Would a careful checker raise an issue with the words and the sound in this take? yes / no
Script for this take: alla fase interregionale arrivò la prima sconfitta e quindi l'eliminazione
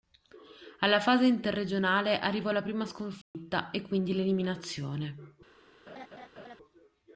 yes